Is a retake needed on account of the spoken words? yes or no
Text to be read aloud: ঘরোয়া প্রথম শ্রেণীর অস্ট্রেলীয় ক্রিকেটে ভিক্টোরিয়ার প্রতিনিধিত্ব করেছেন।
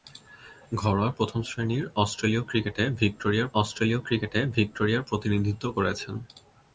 yes